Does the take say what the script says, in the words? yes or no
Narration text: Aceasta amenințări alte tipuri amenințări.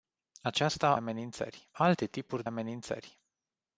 yes